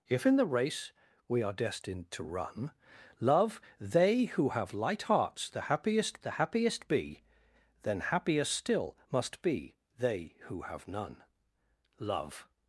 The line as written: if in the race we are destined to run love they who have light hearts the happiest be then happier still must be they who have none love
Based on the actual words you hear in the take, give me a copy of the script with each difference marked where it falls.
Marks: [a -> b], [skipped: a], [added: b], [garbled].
if in the race we are destined to run love they who have light hearts the happiest [added: the happiest] be then happier still must be they who have none love